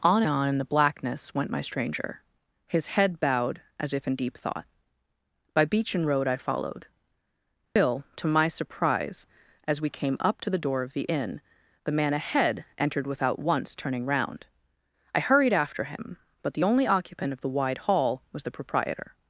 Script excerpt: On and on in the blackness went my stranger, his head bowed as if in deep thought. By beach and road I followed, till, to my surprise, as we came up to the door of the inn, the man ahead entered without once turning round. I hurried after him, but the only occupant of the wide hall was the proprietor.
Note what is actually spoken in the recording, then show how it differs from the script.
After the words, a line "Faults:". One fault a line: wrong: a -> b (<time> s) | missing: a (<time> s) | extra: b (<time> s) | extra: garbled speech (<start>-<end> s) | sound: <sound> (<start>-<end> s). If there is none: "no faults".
On on in the blackness went my stranger, his head bowed as if in deep thought. By beach and road I followed, till, to my surprise, as we came up to the door of the inn, the man ahead entered without once turning round. I hurried after him, but the only occupant of the wide hall was the proprietor.
Faults:
missing: and (0.2 s)
sound: dropout (7.7-7.8 s)